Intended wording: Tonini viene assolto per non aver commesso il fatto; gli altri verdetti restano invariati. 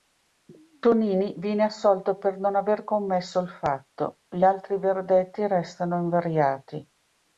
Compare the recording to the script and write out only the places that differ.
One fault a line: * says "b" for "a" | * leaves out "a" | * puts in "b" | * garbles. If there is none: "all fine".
all fine